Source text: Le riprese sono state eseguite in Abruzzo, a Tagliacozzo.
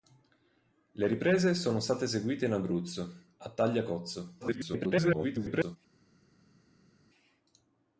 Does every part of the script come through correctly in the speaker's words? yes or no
no